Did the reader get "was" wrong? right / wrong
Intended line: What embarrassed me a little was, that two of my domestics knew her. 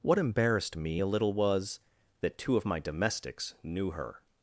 right